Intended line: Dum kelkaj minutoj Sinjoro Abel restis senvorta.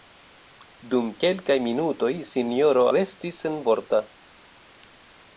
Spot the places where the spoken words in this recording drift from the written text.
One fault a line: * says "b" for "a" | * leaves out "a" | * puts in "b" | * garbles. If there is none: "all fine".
* leaves out "Abel"